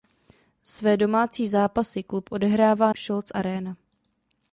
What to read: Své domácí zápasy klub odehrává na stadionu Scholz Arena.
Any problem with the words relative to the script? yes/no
yes